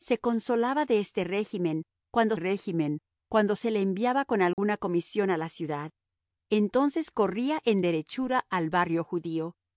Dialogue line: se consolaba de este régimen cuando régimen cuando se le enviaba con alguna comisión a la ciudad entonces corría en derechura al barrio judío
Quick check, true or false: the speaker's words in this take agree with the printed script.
true